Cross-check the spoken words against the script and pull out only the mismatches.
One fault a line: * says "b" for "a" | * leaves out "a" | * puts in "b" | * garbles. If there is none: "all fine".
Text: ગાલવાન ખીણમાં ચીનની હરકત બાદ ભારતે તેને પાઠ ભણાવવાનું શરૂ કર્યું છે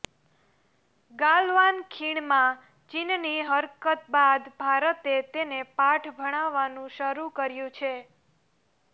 all fine